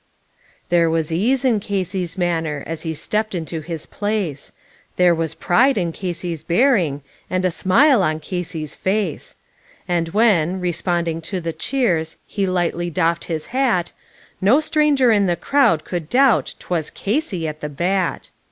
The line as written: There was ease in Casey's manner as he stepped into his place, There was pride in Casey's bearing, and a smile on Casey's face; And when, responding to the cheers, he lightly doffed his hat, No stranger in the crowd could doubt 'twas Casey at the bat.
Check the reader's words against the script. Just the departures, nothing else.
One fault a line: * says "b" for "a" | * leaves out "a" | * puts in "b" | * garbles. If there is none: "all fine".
all fine